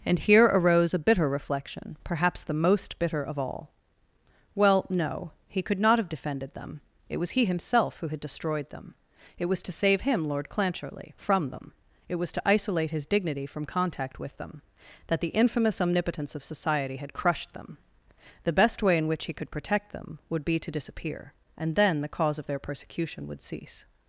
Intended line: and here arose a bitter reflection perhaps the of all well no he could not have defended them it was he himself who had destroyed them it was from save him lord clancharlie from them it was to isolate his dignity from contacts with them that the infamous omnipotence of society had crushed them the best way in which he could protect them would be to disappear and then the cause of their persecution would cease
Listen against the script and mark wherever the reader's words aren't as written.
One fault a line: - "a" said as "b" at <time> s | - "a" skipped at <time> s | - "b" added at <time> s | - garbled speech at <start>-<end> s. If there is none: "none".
- "most bitter" added at 2.5 s
- "from" said as "to" at 9.6 s
- "contacts" said as "contact" at 13.7 s